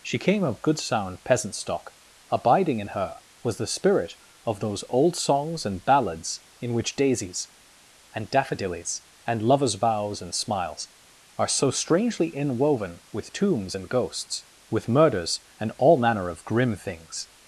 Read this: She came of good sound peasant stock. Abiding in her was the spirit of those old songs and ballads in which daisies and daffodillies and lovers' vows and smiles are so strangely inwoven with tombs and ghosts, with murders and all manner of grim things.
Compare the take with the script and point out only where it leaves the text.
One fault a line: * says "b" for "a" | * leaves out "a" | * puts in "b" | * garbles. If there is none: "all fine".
all fine